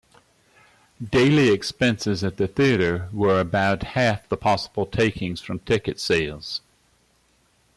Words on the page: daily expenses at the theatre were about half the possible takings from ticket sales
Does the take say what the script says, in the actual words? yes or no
yes